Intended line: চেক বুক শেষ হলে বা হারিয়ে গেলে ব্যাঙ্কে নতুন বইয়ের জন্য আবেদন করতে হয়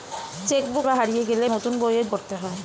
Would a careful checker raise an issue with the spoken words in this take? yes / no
yes